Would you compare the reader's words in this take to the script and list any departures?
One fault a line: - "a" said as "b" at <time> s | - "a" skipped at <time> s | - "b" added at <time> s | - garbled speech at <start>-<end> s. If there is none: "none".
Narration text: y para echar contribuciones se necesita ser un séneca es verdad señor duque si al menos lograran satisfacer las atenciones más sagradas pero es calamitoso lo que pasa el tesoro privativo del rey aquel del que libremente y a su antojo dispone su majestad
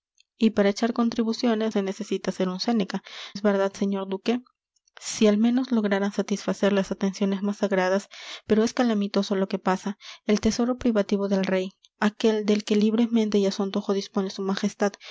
none